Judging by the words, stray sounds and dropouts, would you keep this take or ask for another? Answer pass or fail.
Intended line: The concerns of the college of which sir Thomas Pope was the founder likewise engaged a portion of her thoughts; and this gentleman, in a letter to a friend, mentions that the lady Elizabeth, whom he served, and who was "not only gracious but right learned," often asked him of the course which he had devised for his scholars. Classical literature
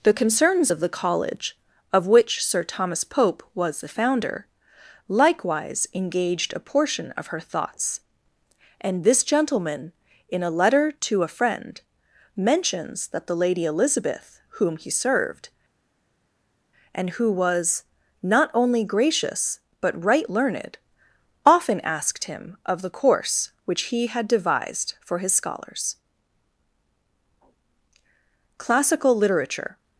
pass